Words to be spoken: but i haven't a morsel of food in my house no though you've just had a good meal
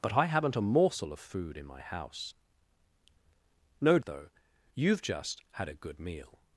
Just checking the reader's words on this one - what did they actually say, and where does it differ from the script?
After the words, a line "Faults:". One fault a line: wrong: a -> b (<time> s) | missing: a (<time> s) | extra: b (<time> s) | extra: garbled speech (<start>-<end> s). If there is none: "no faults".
but i haven't a morsel of food in my house no though you've just had a good meal
Faults:
no faults